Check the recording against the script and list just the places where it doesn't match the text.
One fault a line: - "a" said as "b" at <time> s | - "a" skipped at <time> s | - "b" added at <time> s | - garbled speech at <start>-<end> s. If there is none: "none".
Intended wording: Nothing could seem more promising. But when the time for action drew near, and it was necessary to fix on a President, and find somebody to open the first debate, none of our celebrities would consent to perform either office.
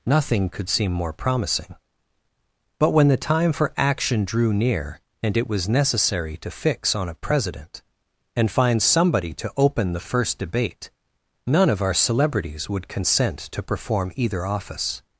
none